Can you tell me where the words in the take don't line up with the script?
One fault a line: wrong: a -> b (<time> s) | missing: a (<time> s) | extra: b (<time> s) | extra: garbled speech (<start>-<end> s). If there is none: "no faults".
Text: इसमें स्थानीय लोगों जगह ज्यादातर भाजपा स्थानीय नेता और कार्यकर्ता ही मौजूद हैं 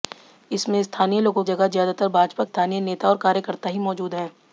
no faults